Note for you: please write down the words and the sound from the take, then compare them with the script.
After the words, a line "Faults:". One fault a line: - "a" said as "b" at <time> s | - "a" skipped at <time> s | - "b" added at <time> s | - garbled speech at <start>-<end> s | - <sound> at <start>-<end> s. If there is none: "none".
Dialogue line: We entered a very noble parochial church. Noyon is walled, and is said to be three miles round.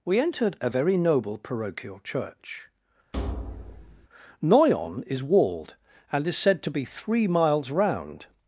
We entered a very noble parochial church. Noyon is walled, and is said to be three miles round.
Faults:
- thud at 3.1-4.1 s